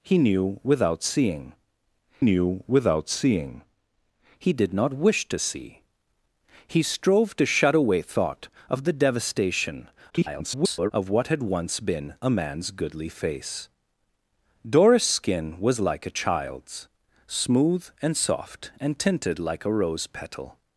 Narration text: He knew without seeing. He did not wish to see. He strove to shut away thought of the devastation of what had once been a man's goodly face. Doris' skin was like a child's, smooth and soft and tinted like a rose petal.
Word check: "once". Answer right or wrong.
right